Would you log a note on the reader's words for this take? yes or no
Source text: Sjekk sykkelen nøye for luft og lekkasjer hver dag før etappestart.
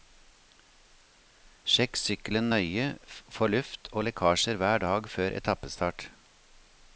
no